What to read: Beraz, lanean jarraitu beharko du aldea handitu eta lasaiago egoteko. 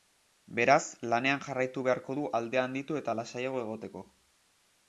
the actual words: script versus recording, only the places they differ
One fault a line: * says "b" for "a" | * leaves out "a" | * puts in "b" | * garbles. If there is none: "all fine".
all fine